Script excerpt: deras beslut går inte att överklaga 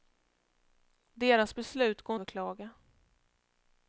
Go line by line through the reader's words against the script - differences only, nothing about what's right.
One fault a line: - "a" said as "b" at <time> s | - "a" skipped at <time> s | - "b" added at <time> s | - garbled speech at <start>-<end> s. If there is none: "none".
- "inte att" skipped at 2.2 s